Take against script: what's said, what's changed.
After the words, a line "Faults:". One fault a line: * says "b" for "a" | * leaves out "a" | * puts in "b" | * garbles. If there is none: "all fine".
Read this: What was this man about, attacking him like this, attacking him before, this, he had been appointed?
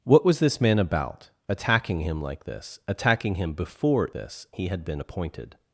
What was this man about, attacking him like this, attacking him before, this, he had been appointed?
Faults:
all fine